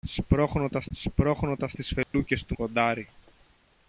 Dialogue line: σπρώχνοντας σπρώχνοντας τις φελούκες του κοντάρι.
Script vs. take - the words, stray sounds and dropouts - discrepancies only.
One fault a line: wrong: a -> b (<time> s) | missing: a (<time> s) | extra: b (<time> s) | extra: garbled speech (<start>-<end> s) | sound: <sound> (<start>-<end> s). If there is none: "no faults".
sound: dropout (2.0-2.1 s)